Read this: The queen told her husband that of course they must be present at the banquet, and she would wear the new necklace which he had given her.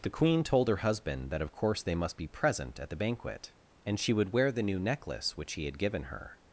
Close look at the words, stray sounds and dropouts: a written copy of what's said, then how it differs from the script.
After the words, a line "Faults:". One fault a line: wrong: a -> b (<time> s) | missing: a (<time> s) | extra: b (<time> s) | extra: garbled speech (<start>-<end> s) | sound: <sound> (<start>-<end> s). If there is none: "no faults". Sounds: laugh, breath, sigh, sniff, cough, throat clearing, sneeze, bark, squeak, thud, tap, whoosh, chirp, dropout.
The queen told her husband that of course they must be present at the banquet, and she would wear the new necklace which he had given her.
Faults:
no faults